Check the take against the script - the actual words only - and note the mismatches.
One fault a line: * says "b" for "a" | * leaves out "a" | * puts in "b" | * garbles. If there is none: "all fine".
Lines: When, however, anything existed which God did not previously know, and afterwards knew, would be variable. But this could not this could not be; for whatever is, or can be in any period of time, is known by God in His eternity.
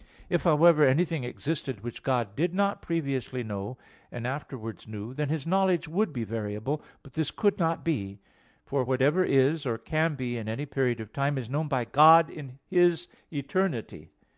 * says "If" for "When"
* puts in "then His knowledge"
* leaves out "this could not"